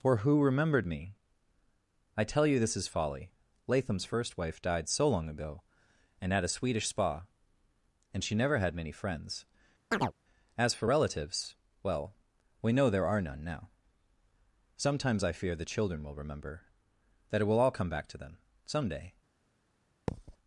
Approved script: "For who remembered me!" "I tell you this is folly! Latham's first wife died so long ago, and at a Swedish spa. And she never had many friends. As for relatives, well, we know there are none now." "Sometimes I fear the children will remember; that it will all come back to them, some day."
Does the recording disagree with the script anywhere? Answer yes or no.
no